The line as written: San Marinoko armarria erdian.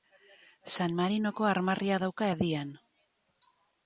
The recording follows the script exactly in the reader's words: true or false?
false